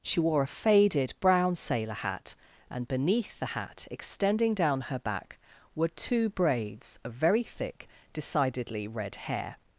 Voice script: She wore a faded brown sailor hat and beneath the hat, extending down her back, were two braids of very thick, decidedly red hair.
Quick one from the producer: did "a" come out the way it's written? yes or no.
yes